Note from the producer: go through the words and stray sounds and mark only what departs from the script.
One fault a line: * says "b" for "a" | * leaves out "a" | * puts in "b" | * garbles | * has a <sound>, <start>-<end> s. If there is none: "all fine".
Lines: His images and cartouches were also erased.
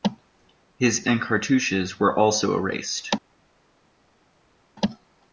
* leaves out "images"